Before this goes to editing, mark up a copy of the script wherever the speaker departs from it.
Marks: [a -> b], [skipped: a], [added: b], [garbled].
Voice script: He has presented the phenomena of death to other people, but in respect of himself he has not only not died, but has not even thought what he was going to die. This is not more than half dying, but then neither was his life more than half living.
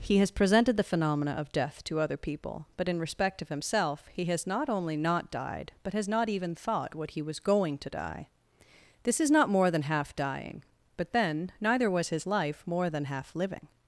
He has presented the phenomena of death to other people, but in respect of himself he has not only not died, but has not even thought what he was going to die. This is not more than half dying, but then neither was his life more than half living.